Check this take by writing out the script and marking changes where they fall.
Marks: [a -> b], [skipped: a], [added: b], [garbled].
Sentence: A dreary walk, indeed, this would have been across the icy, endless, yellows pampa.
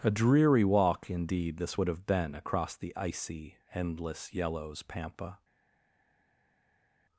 A dreary walk, indeed, this would have been across the icy, endless, yellows pampa.